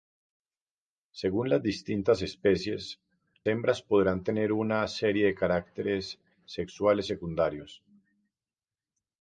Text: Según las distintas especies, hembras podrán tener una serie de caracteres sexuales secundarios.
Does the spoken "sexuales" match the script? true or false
true